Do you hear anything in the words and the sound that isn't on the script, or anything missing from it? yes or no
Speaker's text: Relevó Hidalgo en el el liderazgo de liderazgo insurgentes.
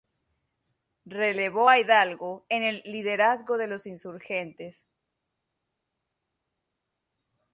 yes